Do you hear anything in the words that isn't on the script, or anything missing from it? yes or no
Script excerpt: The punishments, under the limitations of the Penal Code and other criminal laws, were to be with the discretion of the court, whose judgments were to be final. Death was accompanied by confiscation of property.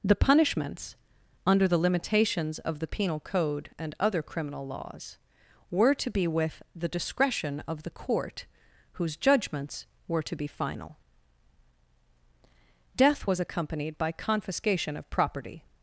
no